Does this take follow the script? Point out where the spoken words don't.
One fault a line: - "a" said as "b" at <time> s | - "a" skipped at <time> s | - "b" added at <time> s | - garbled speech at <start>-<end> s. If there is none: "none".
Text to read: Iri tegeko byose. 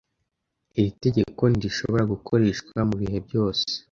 - "ntirishobora gukoreshwa mubihe" added at 1.5 s